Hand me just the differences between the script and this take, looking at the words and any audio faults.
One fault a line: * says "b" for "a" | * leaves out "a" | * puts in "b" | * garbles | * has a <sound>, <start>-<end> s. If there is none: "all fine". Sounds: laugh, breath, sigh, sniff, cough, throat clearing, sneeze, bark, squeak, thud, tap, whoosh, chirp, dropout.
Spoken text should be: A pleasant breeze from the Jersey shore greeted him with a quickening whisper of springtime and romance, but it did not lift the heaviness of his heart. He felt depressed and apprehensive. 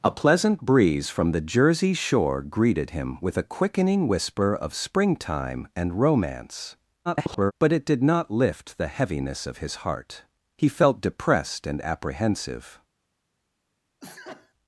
* garbles
* has a sneeze, 14.0-14.5 s